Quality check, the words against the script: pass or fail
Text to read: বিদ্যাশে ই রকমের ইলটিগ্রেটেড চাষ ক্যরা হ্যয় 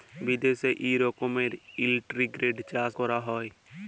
pass